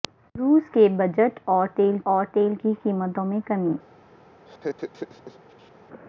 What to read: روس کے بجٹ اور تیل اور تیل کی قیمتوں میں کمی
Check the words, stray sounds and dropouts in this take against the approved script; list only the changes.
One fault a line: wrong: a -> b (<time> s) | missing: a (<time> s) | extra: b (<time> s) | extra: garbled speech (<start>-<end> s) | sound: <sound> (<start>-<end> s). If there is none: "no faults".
sound: laugh (4.4-5.7 s)